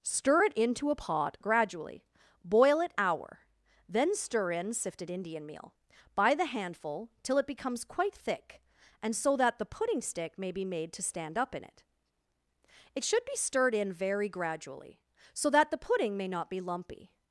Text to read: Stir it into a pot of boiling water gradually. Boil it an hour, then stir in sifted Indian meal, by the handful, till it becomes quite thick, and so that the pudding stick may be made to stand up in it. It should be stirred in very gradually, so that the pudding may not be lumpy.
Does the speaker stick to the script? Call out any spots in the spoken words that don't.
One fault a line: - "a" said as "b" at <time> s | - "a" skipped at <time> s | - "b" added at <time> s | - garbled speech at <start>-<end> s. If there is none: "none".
- "of boiling water" skipped at 1.4 s
- "an" skipped at 2.9 s